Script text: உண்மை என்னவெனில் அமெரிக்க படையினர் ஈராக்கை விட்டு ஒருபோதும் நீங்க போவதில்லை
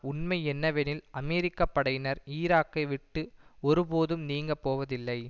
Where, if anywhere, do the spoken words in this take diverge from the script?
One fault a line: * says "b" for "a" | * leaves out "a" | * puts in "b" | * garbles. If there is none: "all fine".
all fine